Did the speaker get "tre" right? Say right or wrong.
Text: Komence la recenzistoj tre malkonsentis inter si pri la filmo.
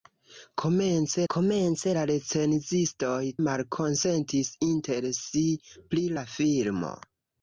wrong